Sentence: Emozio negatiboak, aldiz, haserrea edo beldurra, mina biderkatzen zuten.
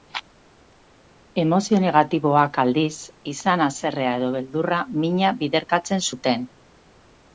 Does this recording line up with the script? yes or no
no